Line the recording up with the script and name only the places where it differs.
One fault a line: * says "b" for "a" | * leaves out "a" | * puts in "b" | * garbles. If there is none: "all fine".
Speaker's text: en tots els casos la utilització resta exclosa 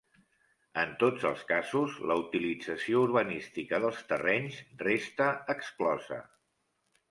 * puts in "urbanística dels terrenys"